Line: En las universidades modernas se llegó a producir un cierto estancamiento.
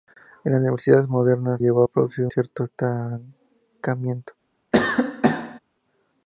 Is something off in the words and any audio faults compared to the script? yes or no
yes